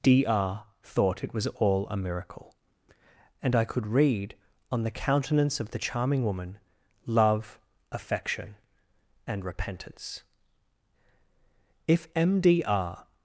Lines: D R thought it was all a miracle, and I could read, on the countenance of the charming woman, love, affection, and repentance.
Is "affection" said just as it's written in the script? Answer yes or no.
yes